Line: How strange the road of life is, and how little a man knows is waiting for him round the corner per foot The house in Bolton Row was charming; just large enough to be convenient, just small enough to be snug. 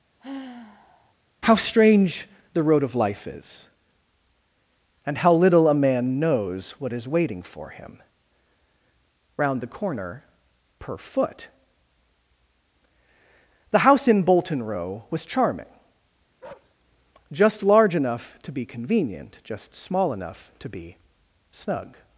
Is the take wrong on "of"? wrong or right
right